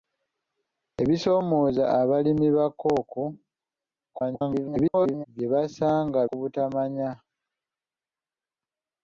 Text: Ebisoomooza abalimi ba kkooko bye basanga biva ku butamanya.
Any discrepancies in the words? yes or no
yes